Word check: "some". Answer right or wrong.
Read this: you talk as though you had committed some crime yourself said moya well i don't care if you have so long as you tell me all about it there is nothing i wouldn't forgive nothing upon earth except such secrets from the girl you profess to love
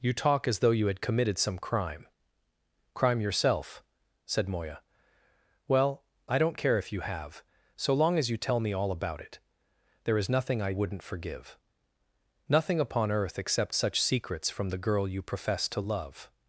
right